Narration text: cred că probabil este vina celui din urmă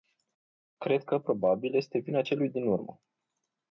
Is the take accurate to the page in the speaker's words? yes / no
yes